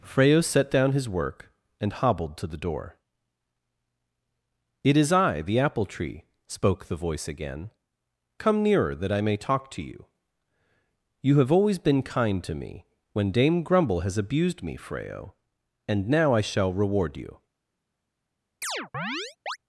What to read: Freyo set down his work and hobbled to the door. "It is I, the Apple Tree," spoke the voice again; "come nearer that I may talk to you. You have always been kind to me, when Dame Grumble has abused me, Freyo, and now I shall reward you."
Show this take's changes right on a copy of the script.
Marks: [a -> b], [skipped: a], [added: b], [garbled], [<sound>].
Freyo set down his work and hobbled to the door. "It is I, the Apple Tree," spoke the voice again; "come nearer that I may talk to you. You have always been kind to me, when Dame Grumble has abused me, Freyo, and now I shall reward you." [chirp]